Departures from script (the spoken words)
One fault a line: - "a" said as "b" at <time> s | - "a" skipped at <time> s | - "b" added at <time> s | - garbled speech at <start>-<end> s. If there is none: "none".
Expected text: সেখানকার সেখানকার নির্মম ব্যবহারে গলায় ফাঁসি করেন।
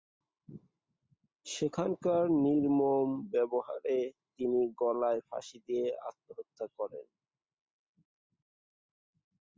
- "সেখানকার" skipped at 2.2 s
- "তিনি" added at 4.3 s
- "দিয়ে আত্মহত্যা" added at 5.7 s